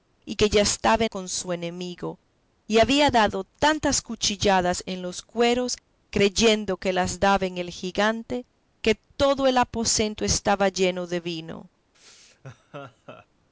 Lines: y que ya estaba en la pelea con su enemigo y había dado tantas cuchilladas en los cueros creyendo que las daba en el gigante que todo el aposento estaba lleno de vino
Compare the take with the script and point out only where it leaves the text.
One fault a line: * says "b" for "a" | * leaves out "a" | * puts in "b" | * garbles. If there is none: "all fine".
* leaves out "en la pelea"